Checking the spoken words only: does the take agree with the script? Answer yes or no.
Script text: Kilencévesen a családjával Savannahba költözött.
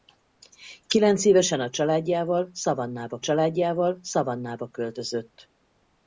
no